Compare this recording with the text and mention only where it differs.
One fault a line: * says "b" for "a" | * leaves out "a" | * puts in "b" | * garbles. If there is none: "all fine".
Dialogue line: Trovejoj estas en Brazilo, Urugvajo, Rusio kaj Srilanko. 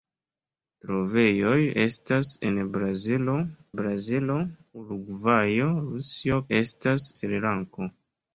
* puts in "Brazilo"
* says "estas" for "kaj"